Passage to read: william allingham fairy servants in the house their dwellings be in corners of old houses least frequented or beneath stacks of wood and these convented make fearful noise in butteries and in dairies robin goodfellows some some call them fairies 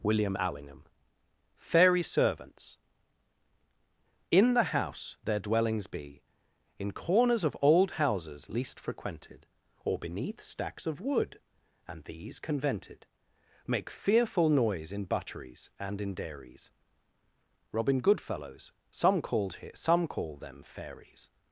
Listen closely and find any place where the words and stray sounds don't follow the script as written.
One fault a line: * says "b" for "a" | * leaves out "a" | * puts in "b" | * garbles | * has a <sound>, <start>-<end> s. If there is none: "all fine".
* puts in "called here"